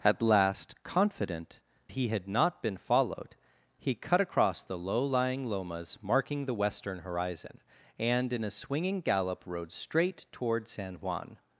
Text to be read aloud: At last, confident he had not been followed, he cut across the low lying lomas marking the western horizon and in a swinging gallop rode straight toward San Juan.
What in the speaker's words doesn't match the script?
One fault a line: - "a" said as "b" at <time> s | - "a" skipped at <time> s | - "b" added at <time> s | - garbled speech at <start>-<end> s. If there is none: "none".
none